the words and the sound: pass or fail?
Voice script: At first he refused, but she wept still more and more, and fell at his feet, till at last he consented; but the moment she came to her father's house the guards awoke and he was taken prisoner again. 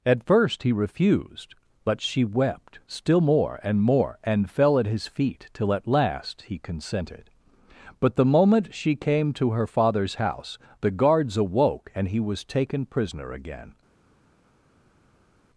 pass